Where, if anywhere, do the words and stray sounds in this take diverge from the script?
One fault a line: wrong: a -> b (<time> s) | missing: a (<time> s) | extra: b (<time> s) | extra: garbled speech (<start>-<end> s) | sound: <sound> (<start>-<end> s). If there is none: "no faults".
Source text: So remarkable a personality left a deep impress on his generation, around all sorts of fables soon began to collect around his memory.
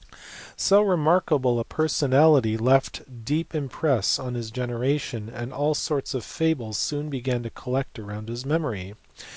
wrong: around -> and (5.3 s)